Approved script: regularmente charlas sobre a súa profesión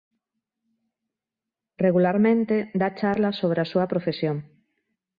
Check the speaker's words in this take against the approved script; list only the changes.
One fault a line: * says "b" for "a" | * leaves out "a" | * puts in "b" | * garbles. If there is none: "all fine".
* puts in "dá"